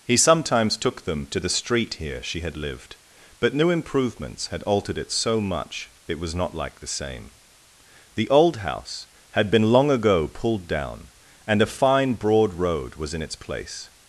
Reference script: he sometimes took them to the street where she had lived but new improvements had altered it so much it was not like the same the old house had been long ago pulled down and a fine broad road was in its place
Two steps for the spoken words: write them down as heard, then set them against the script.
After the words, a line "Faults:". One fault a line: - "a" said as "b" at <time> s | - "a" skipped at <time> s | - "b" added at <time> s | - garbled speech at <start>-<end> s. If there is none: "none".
he sometimes took them to the street here she had lived but new improvements had altered it so much it was not like the same the old house had been long ago pulled down and a fine broad road was in its place
Faults:
- "where" said as "here" at 1.9 s